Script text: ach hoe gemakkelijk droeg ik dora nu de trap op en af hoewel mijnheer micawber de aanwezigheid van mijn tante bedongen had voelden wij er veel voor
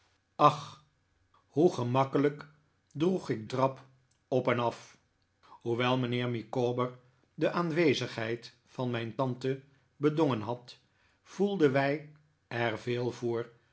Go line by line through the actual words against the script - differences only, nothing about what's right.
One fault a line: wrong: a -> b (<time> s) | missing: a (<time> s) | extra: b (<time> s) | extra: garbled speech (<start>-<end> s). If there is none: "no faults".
missing: dora nu de (3.5 s)